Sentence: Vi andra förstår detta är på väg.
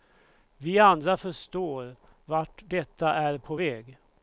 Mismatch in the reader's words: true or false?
true